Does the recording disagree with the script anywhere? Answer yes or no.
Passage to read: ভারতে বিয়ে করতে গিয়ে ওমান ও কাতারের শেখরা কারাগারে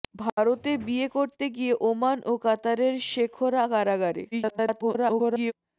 yes